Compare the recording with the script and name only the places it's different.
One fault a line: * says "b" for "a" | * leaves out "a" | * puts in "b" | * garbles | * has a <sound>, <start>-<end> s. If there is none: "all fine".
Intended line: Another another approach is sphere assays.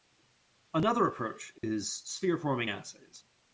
* leaves out "another"
* has a dropout, 1.6-1.6 s
* puts in "forming"